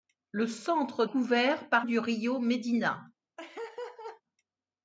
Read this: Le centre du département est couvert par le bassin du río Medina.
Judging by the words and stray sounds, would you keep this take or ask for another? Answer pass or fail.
fail